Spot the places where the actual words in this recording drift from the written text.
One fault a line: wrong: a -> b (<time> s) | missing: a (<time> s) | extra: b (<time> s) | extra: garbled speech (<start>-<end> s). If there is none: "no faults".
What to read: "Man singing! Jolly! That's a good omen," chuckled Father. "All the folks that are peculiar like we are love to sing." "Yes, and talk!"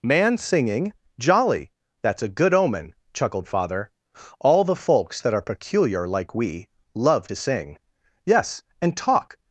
missing: are (6.7 s)